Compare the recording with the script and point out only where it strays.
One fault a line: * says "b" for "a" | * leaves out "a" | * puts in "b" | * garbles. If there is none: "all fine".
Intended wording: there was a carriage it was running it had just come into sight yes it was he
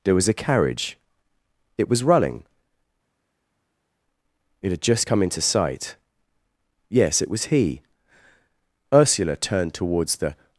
* puts in "ursula turned towards the"